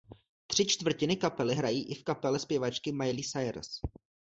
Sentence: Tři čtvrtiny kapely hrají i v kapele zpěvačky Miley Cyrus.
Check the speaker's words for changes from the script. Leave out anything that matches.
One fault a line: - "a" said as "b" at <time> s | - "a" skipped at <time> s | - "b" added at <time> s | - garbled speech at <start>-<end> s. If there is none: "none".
none